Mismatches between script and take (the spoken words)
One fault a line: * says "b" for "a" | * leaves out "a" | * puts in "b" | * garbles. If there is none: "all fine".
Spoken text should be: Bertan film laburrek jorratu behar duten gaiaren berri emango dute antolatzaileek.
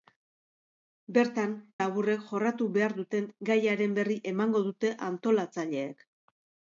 * leaves out "film"